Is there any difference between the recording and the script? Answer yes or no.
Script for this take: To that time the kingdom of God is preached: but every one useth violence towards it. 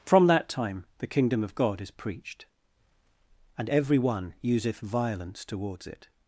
yes